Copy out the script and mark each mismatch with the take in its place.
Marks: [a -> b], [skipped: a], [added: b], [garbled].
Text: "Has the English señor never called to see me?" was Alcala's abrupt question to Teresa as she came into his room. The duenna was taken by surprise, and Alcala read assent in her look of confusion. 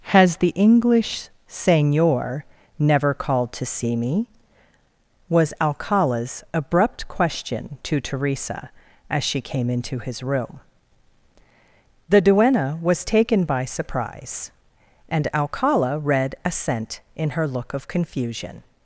"Has the English señor never called to see me?" was Alcala's abrupt question to Teresa as she came into his room. The duenna was taken by surprise, and Alcala read assent in her look of confusion.